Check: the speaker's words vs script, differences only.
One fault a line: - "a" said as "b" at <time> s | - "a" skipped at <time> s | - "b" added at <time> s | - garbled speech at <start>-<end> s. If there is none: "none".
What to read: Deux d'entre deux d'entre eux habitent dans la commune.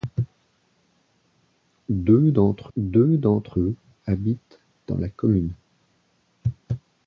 none